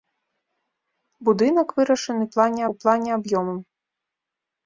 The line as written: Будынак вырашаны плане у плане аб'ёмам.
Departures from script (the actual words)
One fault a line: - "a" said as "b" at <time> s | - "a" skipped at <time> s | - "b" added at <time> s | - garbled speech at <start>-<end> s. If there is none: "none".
none